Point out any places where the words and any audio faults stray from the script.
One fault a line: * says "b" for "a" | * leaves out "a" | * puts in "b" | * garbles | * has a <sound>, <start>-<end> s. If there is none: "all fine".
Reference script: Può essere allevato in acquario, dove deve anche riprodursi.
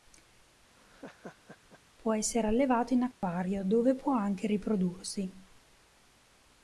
* has a laugh, 0.7-1.8 s
* has a dropout, 3.1-3.2 s
* says "può" for "deve"